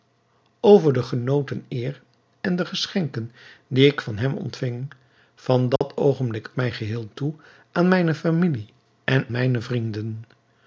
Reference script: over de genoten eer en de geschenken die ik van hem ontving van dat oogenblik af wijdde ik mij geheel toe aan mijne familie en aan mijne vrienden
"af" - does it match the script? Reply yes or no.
no